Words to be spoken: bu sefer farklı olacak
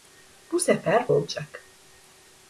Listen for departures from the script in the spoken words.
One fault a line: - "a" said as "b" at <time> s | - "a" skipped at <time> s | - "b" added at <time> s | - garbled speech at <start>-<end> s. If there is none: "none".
- "farklı" skipped at 1.1 s